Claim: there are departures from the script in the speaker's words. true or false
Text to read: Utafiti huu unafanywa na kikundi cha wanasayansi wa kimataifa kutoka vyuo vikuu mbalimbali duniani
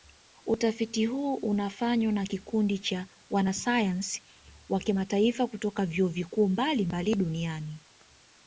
false